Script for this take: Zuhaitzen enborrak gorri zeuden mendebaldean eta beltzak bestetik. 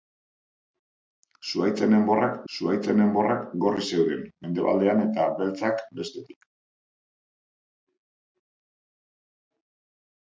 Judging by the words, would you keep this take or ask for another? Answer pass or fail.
fail